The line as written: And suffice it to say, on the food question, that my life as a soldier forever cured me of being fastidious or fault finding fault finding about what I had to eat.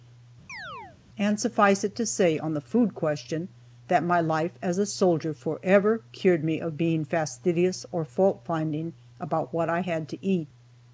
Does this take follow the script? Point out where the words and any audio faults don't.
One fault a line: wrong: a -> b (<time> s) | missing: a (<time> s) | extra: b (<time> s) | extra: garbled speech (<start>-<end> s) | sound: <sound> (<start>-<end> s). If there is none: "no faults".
sound: chirp (0.5-1.0 s)
missing: fault finding (8.9 s)